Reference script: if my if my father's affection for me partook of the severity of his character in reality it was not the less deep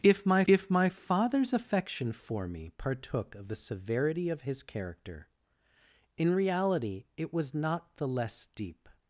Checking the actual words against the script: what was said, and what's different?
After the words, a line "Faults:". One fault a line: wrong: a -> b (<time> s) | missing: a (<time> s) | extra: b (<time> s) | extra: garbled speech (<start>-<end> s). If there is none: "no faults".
if my if my father's affection for me partook of the severity of his character in reality it was not the less deep
Faults:
no faults